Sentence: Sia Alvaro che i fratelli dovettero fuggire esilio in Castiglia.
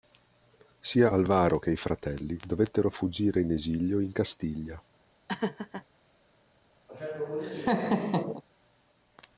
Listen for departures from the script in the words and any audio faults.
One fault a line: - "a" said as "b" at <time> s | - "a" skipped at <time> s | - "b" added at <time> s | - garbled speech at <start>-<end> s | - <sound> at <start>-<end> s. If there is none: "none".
- "in" added at 3.4 s
- laugh at 5.3-5.8 s
- laugh at 6.9-8.4 s